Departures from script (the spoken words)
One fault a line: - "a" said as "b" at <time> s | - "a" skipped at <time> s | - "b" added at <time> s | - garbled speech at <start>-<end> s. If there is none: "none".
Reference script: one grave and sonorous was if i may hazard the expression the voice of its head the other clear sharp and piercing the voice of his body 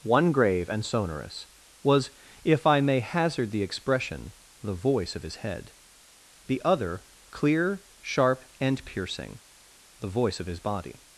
- "its" said as "his" at 5.2 s